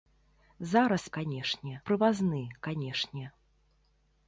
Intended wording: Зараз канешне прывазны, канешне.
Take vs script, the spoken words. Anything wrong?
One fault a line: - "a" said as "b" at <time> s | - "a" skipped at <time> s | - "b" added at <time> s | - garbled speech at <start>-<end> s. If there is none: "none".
none